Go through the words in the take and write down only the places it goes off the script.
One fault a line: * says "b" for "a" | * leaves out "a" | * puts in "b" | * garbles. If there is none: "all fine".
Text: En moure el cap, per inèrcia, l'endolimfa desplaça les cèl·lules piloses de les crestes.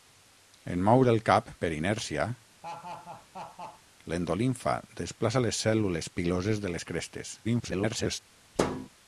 * garbles